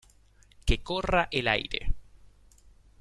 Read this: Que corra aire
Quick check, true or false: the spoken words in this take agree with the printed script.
false